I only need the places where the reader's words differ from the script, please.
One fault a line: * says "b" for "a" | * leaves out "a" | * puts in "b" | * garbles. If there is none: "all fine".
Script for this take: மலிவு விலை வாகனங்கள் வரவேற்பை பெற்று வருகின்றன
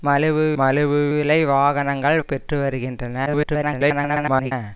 * puts in "மலிவு"
* leaves out "வரவேற்பை"
* garbles